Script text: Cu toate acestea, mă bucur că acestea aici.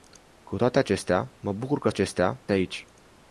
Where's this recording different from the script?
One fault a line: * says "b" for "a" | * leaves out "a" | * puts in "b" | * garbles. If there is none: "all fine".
all fine